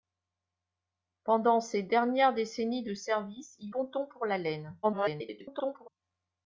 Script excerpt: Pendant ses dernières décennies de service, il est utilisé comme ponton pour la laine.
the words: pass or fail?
fail